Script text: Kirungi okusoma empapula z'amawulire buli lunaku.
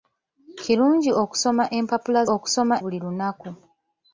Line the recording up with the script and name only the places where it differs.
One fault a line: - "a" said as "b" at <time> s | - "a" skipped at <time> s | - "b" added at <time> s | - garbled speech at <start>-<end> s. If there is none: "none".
- "z'amawulire" said as "okusoma" at 2.3 s